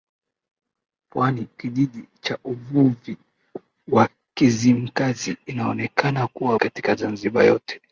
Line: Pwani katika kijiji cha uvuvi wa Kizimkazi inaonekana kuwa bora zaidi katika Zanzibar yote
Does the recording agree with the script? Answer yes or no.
no